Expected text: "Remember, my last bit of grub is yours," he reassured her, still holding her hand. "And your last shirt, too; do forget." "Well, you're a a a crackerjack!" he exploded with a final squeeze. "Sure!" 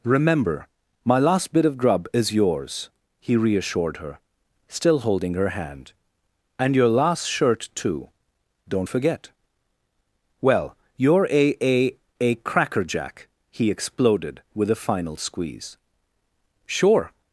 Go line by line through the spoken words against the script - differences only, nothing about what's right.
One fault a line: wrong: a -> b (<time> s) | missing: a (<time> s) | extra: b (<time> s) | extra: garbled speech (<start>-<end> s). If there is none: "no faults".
wrong: do -> don't (8.7 s)